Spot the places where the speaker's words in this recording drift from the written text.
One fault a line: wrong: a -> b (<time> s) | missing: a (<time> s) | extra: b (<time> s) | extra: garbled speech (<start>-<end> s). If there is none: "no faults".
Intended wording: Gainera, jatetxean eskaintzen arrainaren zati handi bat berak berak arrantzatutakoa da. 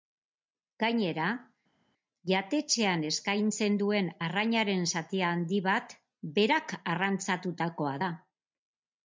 extra: duen (3.8 s)
missing: berak (6.8 s)